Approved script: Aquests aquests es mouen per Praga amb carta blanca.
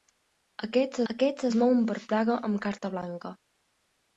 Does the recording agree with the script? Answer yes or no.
yes